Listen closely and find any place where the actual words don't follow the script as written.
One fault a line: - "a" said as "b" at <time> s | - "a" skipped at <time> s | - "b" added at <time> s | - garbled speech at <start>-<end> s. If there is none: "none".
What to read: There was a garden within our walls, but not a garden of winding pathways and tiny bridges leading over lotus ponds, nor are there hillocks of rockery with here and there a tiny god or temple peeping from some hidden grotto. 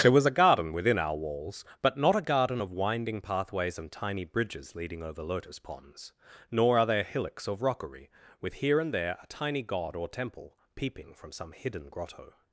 none